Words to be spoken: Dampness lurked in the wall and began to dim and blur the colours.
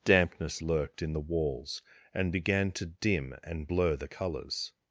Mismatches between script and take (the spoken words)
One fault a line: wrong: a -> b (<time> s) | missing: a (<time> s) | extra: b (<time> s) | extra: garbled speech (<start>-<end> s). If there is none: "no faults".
wrong: wall -> walls (1.2 s)